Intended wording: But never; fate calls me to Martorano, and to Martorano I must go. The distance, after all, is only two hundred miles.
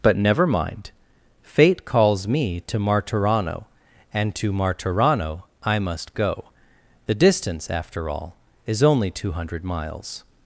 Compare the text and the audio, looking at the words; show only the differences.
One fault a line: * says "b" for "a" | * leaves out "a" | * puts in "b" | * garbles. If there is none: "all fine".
* puts in "mind"